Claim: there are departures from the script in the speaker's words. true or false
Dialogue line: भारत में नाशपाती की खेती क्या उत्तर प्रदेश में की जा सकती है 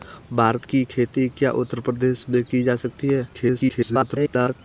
true